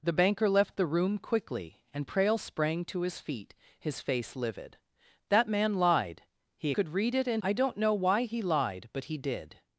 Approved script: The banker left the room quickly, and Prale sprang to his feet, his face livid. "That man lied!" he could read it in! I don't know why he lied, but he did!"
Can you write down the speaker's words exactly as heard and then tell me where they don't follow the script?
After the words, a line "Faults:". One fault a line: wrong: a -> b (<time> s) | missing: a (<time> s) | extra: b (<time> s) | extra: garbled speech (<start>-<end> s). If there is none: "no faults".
The banker left the room quickly, and Prale sprang to his feet, his face livid. "That man lied!" he could read it in! I don't know why he lied, but he did!"
Faults:
no faults